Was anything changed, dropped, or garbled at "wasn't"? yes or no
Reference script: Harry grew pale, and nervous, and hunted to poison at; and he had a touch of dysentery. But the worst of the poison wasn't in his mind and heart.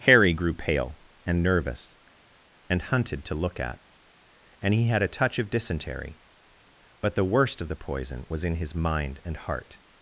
yes